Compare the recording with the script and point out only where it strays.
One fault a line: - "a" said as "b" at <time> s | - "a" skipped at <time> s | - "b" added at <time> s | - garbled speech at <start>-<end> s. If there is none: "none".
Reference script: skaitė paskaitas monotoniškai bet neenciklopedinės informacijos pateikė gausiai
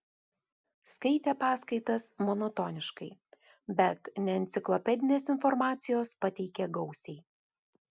none